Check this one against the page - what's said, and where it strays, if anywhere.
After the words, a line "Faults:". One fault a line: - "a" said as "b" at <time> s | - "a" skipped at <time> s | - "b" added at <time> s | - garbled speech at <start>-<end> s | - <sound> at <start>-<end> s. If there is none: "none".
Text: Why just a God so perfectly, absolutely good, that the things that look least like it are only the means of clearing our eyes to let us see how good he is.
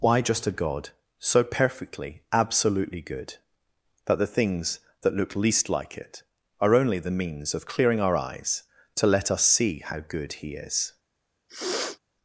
Why just a God so perfectly, absolutely good, that the things that look least like it are only the means of clearing our eyes to let us see how good he is.
Faults:
- sniff at 11.5-12.0 s